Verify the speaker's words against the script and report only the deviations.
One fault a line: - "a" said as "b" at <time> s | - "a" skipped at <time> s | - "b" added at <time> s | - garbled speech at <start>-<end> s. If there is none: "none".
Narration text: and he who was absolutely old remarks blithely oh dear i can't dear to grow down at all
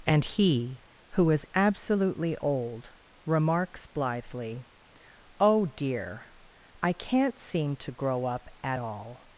- "was" said as "is" at 1.3 s
- "dear" said as "seem" at 7.4 s
- "down" said as "up" at 8.2 s